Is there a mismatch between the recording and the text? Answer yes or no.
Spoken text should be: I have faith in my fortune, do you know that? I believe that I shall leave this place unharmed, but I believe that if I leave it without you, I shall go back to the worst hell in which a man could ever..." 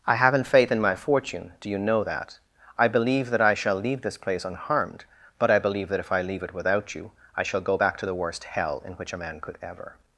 yes